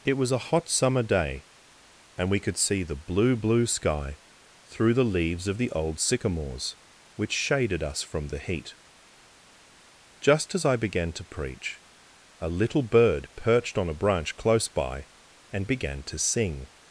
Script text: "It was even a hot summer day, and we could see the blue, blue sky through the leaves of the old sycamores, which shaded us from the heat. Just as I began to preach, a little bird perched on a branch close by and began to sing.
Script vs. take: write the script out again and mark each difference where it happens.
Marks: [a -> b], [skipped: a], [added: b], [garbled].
"It was [skipped: even] a hot summer day, and we could see the blue, blue sky through the leaves of the old sycamores, which shaded us from the heat. Just as I began to preach, a little bird perched on a branch close by and began to sing.